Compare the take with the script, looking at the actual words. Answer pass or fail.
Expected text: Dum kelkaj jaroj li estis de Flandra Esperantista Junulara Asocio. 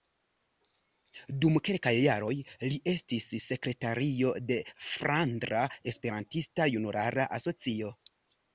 fail